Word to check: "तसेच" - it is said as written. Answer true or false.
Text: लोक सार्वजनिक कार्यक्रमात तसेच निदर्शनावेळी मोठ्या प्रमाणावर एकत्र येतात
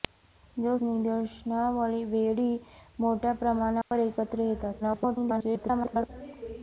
false